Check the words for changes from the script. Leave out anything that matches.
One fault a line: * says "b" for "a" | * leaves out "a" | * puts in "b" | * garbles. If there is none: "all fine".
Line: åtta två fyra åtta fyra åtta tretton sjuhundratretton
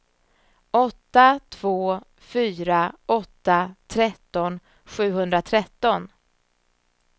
* leaves out "fyra åtta"